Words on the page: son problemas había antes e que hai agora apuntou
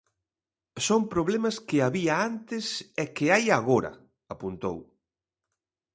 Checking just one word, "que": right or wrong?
right